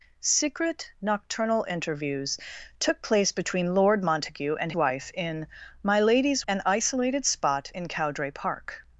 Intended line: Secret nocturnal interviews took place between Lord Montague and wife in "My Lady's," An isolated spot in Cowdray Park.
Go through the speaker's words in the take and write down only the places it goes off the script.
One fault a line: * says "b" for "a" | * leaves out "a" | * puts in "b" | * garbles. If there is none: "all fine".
all fine